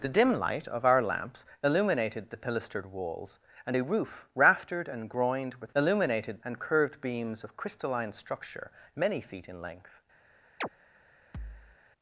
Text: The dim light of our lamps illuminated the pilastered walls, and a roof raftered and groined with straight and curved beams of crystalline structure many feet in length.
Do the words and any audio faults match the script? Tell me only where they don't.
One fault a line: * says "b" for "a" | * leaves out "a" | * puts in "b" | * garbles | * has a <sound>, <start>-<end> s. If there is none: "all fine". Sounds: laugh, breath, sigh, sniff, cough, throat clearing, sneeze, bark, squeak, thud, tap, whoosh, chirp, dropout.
* says "illuminated" for "straight"
* has a chirp, 10.6-10.7 s
* has a thud, 11.3-11.8 s